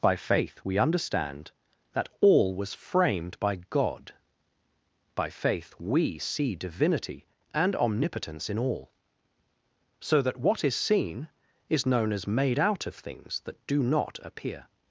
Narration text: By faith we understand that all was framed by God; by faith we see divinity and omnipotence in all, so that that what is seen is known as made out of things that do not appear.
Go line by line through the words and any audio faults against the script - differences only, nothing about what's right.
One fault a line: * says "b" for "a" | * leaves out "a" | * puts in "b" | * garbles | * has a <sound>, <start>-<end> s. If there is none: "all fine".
* leaves out "that"